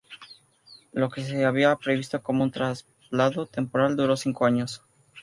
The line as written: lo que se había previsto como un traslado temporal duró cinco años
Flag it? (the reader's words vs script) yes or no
no